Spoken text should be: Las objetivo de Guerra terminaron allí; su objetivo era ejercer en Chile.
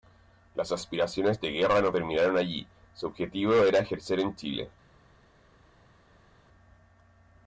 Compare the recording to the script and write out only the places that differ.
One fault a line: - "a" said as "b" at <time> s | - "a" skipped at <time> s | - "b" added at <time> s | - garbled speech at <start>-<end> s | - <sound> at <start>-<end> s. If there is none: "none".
- "objetivo" said as "aspiraciones" at 0.7 s
- "no" added at 1.8 s